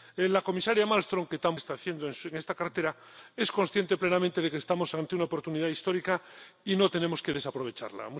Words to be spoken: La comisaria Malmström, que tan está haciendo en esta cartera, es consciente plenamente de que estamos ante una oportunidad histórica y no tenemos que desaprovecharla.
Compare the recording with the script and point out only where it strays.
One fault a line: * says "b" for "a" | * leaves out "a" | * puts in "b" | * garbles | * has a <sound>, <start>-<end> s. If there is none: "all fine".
all fine